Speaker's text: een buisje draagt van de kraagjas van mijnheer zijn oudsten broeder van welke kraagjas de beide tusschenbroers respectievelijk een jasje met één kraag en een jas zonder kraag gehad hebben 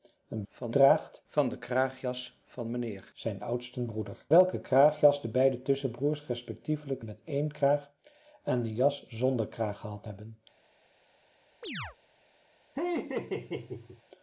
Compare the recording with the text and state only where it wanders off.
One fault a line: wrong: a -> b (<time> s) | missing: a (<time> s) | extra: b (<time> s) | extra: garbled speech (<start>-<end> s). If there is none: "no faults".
wrong: buisje -> van (0.5 s)
missing: van (4.2 s)
missing: een jasje (7.0 s)